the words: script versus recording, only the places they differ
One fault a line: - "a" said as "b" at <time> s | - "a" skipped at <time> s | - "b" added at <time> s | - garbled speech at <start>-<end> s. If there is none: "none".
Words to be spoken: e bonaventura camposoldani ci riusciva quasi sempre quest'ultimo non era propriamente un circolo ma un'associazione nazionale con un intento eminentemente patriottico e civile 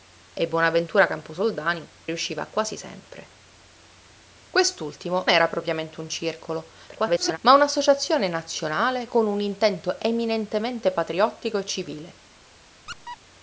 - "ci" skipped at 1.9 s
- "non" skipped at 5.3 s
- garbled speech at 6.9-7.4 s